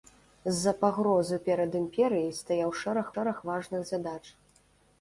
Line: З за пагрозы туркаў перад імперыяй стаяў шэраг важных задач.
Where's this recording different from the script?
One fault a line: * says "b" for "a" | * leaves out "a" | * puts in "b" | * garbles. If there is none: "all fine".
* leaves out "туркаў"
* puts in "шэраг"